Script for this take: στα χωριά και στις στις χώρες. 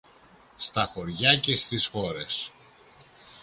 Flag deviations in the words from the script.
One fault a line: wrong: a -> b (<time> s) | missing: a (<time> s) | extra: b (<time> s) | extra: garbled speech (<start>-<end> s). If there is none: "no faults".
missing: στις (1.9 s)